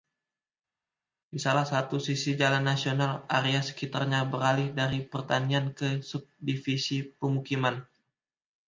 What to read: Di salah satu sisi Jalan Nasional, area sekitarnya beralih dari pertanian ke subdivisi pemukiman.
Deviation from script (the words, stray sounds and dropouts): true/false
false